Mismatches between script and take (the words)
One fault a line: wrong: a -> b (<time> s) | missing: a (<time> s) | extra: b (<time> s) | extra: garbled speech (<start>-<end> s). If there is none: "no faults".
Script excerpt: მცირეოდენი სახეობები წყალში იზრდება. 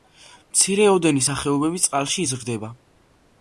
no faults